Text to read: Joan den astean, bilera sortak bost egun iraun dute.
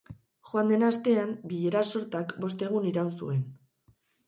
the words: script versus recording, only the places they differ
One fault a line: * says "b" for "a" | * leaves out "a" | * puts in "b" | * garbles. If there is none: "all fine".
* says "zuen" for "dute"